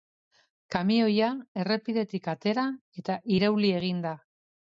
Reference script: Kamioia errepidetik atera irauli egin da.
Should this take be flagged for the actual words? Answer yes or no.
yes